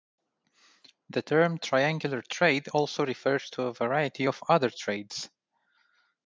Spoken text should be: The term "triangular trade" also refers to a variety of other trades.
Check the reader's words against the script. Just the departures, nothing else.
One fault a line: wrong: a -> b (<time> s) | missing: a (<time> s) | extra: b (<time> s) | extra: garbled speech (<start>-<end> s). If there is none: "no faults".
no faults